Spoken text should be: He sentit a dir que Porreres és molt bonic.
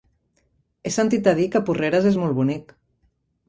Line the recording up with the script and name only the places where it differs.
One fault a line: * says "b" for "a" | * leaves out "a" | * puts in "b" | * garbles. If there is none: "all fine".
all fine